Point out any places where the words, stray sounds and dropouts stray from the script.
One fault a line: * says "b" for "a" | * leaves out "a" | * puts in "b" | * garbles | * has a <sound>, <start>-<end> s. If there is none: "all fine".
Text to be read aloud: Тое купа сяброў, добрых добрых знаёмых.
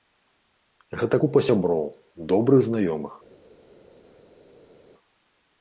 * says "Гэта" for "Тое"
* leaves out "добрых"